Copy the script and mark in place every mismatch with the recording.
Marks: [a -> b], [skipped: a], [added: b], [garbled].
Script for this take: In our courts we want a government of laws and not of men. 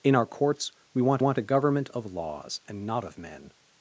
In our courts we want [added: want] a government of laws and not of men.